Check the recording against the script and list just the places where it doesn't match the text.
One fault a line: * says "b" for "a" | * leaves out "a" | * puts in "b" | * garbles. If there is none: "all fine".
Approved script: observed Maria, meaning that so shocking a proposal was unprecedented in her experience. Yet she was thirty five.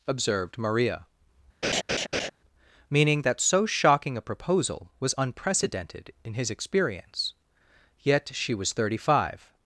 * says "his" for "her"